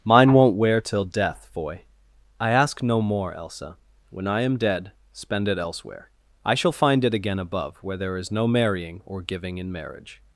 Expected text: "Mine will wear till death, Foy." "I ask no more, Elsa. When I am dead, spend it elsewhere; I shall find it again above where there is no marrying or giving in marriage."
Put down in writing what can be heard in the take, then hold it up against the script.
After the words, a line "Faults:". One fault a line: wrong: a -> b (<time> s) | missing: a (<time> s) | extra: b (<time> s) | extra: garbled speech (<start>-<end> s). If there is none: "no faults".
"Mine won't wear till death, Foy." "I ask no more, Elsa. When I am dead, spend it elsewhere; I shall find it again above where there is no marrying or giving in marriage."
Faults:
wrong: will -> won't (0.3 s)